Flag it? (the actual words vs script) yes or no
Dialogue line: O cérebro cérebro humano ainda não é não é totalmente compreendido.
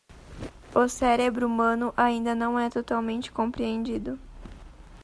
yes